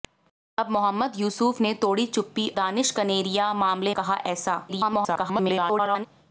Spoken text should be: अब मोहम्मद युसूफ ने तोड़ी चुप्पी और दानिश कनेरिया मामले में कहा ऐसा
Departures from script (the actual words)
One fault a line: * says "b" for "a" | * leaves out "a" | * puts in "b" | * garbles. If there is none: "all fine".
* leaves out "और"
* leaves out "में"
* garbles